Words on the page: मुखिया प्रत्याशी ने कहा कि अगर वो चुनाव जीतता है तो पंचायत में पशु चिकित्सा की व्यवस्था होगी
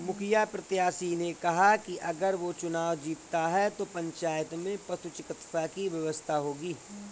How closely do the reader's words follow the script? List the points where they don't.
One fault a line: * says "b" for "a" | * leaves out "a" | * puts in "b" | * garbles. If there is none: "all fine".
all fine